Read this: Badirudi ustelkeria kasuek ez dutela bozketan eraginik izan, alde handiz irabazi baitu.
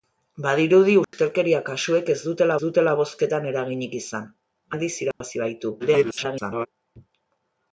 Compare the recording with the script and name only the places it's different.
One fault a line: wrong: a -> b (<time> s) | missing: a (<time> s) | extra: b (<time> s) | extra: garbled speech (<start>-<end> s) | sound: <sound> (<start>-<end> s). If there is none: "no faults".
sound: dropout (1.0-1.1 s)
extra: dutela (2.7 s)
missing: alde (4.3 s)
sound: dropout (5.1-5.2 s)
extra: garbled speech (5.8-6.7 s)